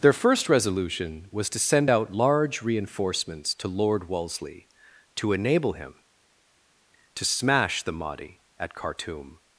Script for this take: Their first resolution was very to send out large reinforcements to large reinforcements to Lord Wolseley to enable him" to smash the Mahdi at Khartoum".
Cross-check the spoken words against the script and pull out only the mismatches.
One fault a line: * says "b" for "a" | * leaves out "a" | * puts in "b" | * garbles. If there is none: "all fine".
* leaves out "very"
* leaves out "large reinforcements to"